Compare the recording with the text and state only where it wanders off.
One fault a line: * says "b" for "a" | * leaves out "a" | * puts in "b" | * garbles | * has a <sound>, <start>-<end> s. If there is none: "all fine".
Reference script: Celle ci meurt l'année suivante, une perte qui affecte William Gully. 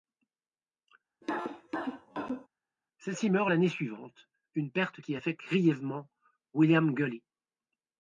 * has a cough, 1.2-2.5 s
* puts in "grièvement"